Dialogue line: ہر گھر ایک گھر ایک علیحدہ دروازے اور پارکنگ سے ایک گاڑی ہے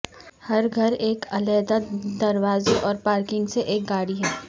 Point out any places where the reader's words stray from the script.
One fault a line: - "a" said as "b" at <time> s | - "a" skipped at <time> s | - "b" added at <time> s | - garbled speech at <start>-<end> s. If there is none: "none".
- "گھر ایک" skipped at 1.2 s